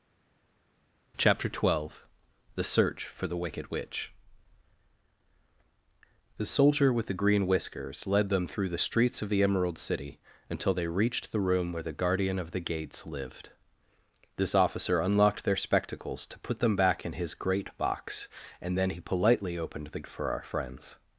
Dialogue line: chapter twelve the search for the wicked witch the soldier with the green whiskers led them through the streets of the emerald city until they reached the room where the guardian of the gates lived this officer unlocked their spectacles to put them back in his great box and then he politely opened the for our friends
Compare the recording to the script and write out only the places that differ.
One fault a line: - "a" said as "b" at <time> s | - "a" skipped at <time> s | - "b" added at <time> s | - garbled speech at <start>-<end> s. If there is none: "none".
none